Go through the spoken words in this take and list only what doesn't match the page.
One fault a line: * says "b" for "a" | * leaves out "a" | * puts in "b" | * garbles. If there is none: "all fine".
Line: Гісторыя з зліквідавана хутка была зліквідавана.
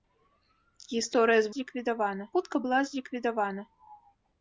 all fine